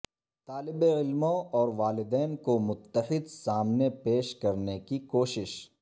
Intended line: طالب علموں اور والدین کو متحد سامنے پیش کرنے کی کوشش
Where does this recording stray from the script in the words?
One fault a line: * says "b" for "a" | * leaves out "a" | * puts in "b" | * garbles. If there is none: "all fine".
all fine